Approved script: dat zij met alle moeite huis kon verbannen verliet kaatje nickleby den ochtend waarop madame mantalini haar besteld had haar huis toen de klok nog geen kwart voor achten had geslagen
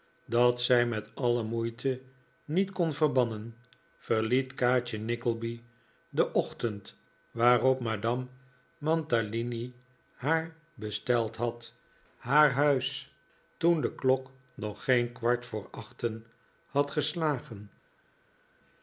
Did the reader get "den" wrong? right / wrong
right